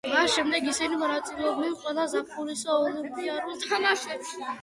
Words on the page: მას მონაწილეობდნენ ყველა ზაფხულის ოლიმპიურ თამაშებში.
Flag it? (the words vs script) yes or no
yes